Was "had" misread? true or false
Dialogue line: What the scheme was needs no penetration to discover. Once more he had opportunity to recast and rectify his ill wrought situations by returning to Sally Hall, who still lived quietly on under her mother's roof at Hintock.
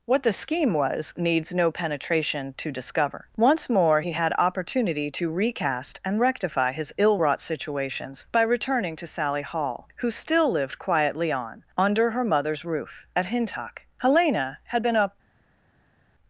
false